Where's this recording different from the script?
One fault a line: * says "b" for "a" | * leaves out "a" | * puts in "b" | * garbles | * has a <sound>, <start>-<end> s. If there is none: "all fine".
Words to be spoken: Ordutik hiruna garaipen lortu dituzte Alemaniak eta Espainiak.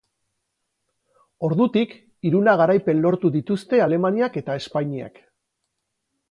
all fine